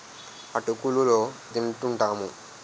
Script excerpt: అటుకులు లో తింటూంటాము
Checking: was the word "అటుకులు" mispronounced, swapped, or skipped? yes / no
no